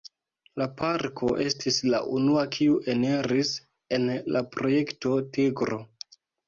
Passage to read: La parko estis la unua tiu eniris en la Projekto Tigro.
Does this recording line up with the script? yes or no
no